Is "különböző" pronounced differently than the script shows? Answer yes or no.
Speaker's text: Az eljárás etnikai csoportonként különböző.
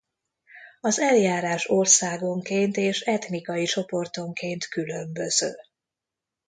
no